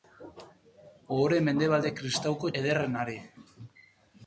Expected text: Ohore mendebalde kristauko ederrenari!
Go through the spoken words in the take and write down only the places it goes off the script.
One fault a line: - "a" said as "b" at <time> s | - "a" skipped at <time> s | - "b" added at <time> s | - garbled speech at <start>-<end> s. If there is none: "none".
none